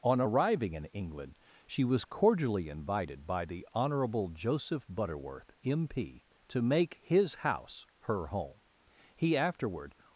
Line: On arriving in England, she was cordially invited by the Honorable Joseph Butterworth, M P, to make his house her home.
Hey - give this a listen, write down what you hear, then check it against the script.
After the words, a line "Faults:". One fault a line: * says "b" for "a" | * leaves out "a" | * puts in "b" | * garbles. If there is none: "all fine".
On arriving in England, she was cordially invited by the Honorable Joseph Butterworth, M P, to make his house her home. He afterward
Faults:
* puts in "He afterward"